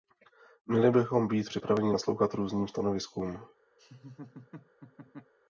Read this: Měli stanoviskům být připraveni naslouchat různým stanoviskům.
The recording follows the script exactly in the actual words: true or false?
false